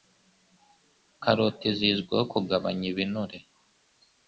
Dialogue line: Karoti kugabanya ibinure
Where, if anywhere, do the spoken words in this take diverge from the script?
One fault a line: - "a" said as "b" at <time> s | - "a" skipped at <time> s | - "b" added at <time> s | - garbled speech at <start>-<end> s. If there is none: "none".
- "zizwiho" added at 1.8 s